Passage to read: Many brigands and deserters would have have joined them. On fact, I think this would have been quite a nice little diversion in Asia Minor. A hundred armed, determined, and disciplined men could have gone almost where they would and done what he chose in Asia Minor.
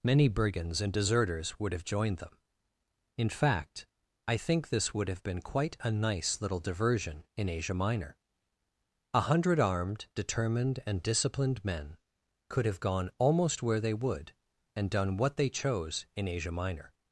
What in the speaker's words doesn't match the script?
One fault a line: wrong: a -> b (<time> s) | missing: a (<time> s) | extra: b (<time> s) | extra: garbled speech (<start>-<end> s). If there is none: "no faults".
missing: have (1.9 s)
wrong: On -> In (3.2 s)
wrong: he -> they (15.4 s)